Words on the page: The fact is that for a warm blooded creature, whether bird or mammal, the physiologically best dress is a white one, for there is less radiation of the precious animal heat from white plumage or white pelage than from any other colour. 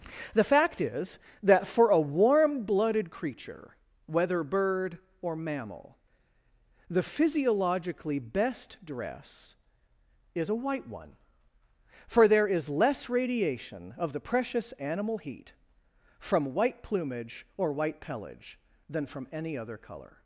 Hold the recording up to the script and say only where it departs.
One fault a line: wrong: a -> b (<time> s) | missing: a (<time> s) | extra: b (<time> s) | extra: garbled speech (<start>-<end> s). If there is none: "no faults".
no faults